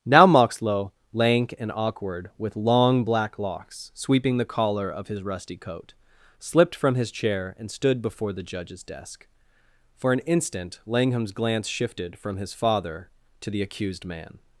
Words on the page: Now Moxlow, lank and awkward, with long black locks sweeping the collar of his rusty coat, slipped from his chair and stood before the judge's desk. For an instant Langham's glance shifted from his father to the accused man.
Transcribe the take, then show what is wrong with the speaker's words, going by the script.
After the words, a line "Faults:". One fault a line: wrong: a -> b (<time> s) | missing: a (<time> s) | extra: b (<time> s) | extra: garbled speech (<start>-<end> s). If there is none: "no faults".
Now Moxlow, lank and awkward, with long black locks sweeping the collar of his rusty coat, slipped from his chair and stood before the judge's desk. For an instant Langham's glance shifted from his father to the accused man.
Faults:
no faults